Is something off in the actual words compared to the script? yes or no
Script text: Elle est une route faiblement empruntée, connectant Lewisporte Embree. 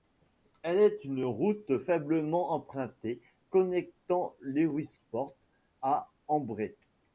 yes